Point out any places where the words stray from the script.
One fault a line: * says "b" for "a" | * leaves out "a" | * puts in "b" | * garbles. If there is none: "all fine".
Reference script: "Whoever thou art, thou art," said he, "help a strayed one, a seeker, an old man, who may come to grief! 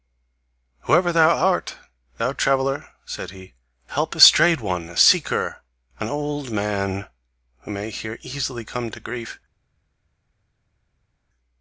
* says "traveller" for "art"
* puts in "here easily"